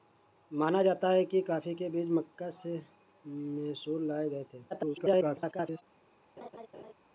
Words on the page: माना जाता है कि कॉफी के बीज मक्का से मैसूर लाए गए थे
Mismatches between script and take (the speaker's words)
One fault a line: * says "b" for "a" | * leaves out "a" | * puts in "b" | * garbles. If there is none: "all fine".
* garbles